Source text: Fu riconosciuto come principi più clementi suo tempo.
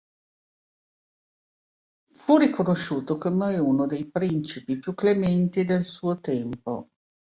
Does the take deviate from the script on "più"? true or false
false